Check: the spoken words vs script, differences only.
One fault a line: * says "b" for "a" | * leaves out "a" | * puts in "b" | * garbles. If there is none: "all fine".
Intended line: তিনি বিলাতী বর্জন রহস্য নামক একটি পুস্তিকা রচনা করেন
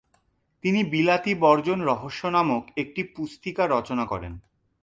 all fine